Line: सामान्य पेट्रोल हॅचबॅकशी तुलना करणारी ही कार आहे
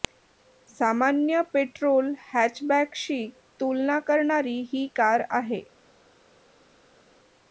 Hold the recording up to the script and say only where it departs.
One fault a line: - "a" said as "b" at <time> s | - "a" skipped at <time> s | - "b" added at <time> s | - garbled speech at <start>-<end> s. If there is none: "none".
none